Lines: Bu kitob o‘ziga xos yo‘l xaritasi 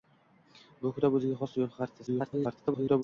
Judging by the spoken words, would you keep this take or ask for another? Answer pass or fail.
fail